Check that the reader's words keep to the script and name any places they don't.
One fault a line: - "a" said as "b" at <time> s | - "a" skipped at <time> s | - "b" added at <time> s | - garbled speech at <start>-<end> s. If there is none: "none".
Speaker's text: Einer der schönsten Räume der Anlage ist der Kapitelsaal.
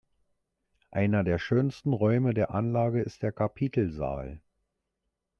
none